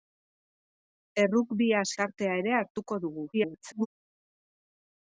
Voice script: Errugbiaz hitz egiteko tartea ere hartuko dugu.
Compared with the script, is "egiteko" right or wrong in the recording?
wrong